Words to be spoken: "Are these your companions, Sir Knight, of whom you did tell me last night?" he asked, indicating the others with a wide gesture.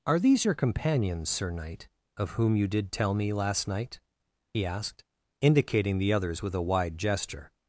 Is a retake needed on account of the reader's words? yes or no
no